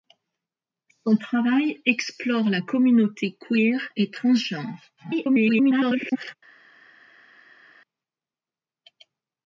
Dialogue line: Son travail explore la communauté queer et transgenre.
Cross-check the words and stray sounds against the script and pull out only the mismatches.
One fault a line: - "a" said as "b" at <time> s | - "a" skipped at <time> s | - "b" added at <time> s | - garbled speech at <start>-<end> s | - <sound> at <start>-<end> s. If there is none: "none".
- garbled speech at 5.0-6.4 s